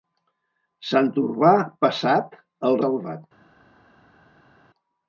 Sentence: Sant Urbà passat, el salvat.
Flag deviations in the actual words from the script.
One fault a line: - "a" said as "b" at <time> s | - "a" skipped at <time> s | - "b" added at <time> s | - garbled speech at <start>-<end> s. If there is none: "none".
none